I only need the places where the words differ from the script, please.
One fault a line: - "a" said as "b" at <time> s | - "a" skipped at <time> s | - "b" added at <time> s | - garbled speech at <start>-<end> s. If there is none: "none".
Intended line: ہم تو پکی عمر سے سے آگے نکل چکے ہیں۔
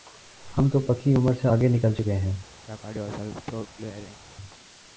- "سے" skipped at 1.5 s